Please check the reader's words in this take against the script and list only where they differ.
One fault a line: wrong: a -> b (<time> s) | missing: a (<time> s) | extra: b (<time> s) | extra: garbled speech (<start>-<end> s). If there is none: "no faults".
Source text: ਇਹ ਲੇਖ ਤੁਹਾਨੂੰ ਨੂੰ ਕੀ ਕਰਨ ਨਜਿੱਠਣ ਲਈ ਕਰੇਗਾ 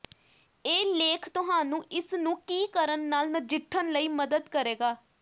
extra: ਇਸ (1.9 s)
extra: ਨਾਲ (3.1 s)
extra: ਮਦਦ (4.1 s)